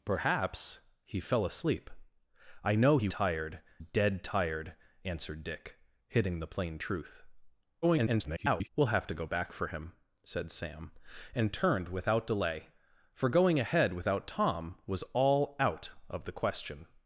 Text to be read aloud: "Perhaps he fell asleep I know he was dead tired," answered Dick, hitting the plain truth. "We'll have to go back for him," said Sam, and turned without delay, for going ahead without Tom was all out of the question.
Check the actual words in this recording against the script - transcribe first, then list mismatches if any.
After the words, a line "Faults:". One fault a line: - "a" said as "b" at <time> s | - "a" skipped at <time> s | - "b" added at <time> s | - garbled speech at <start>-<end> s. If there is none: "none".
"Perhaps he fell asleep I know he tired dead tired," answered Dick, hitting the plain truth. [garbled] "We'll have to go back for him," said Sam, and turned without delay, for going ahead without Tom was all out of the question.
Faults:
- "was" said as "tired" at 3.1 s
- garbled speech at 7.8-8.7 s